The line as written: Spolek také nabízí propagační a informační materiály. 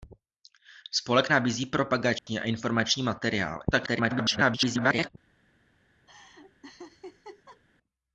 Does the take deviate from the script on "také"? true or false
true